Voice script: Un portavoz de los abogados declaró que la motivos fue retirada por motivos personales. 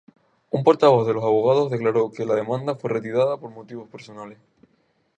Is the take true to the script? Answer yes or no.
no